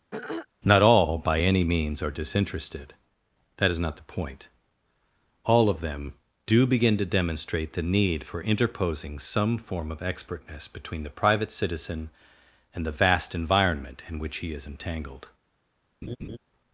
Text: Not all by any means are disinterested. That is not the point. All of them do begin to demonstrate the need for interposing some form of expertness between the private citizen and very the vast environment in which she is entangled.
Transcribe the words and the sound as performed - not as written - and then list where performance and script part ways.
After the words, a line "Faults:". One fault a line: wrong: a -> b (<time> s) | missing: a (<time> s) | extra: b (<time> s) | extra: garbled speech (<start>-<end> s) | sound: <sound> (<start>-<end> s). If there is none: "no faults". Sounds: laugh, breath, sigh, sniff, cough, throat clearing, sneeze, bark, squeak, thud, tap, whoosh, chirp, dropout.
Not all by any means are disinterested. That is not the point. All of them do begin to demonstrate the need for interposing some form of expertness between the private citizen and the vast environment in which he is entangled.
Faults:
sound: throat clearing (0.1-0.5 s)
missing: very (12.9 s)
wrong: she -> he (14.4 s)
sound: laugh (16.0-16.4 s)